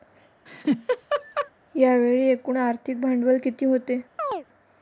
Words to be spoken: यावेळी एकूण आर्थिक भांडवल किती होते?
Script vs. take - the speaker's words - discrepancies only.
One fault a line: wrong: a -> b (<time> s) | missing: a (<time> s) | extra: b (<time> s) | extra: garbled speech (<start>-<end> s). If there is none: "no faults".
no faults